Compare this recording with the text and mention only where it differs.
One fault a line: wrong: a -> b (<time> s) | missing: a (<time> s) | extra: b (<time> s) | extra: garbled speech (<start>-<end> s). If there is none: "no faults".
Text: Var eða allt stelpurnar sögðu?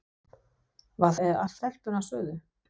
no faults